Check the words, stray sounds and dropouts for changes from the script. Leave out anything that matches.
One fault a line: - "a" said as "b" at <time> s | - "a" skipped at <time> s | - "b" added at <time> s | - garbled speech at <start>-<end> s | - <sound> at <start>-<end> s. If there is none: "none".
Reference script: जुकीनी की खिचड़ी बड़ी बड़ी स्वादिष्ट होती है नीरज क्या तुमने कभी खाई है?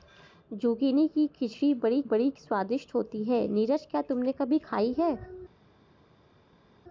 none